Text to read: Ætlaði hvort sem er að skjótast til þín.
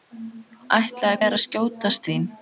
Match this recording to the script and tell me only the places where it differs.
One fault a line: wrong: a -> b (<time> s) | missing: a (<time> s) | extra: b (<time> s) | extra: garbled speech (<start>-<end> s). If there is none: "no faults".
missing: hvort sem (1.2 s)
missing: til (2.1 s)